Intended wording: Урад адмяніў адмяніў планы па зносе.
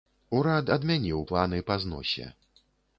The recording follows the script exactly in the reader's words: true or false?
false